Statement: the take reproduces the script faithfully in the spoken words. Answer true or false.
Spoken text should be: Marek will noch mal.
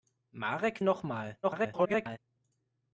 false